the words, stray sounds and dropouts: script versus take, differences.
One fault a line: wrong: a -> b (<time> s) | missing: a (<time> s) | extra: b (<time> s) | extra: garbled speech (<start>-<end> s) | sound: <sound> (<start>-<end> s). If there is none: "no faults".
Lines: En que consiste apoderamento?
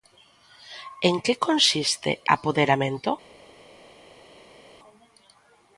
no faults